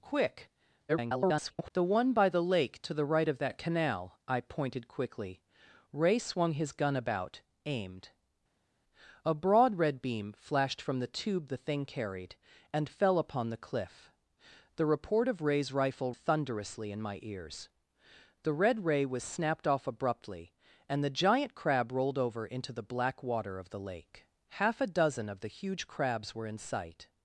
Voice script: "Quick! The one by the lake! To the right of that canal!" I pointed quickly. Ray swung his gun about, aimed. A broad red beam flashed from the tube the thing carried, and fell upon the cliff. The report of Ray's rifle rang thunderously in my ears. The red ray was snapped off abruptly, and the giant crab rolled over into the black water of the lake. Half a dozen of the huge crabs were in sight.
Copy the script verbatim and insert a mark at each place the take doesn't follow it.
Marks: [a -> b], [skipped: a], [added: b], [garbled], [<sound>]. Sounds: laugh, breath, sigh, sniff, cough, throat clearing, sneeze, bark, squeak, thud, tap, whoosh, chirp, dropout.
"Quick! [garbled] The one by the lake! To the right of that canal!" I pointed quickly. Ray swung his gun about, aimed. A broad red beam flashed from the tube the thing carried, and fell upon the cliff. The report of Ray's rifle [skipped: rang] thunderously in my ears. The red ray was snapped off abruptly, and the giant crab rolled over into the black water of the lake. Half a dozen of the huge crabs were in sight.